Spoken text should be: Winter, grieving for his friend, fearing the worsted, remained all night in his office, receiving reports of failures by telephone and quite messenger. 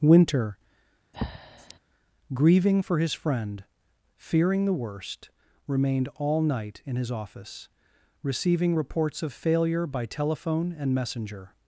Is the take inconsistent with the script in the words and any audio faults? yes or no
yes